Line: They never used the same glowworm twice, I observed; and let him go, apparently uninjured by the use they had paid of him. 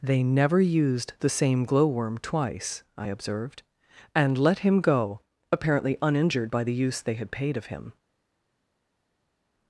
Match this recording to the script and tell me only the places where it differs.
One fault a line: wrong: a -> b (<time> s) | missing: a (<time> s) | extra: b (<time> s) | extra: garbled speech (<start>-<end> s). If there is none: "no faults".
no faults